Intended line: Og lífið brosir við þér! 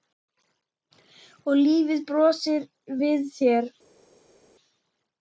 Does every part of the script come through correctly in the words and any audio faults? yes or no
yes